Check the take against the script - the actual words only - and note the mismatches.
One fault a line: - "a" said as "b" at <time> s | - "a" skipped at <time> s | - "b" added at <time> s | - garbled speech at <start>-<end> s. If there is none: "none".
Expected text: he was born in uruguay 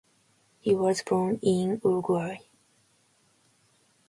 none